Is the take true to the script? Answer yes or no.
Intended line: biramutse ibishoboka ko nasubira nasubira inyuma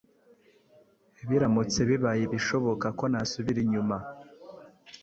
no